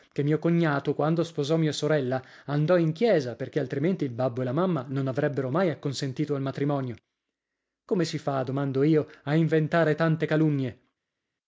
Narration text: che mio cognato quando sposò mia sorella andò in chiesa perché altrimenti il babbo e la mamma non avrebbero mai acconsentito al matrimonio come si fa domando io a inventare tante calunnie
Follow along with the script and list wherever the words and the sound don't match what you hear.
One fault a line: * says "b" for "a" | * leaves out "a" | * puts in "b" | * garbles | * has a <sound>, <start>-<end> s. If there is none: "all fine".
all fine